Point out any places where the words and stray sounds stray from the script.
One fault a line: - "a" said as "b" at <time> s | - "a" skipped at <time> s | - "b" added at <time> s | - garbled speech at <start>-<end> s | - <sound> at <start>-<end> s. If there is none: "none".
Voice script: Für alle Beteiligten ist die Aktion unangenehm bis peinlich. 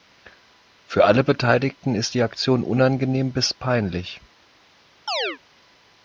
- chirp at 5.1-5.4 s